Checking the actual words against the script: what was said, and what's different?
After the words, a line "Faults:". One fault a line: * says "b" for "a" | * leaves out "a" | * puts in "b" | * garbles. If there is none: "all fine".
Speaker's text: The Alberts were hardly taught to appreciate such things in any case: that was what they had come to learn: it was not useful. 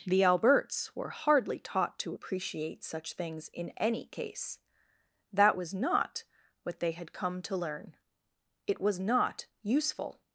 The Alberts were hardly taught to appreciate such things in any case: that was not what they had come to learn: it was not useful.
Faults:
* puts in "not"